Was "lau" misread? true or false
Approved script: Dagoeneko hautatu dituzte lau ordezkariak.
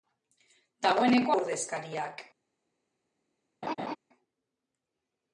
true